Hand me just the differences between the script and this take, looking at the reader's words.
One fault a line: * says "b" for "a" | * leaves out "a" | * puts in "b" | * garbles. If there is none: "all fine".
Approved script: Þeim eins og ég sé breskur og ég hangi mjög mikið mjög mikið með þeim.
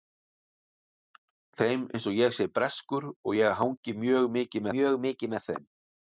all fine